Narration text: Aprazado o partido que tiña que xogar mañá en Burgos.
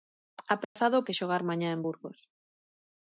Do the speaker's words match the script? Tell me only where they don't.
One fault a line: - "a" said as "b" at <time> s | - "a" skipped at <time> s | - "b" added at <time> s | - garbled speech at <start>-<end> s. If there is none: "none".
- "partido que tiña" skipped at 1.1 s